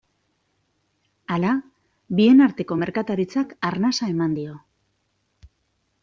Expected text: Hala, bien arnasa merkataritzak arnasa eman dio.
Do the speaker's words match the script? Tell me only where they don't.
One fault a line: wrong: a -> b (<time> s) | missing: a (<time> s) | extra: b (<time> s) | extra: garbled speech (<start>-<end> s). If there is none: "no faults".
wrong: arnasa -> arteko (2.5 s)